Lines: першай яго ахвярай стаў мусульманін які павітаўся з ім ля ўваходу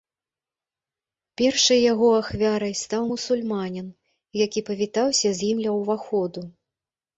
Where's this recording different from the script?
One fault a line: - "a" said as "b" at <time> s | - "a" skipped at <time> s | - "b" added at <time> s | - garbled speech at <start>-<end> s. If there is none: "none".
none